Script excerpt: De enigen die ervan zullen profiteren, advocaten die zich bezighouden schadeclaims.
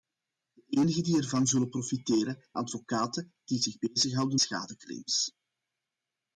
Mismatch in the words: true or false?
false